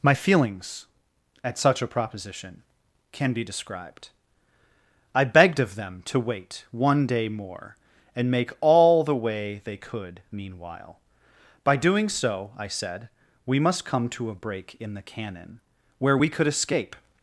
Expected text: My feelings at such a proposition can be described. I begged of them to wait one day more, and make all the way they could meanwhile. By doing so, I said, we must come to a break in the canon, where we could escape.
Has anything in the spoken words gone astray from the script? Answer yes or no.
no